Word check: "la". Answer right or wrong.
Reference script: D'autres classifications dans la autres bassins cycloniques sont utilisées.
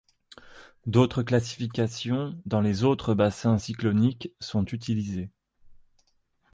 wrong